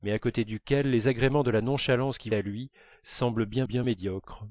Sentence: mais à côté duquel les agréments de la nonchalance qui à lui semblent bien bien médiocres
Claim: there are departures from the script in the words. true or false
false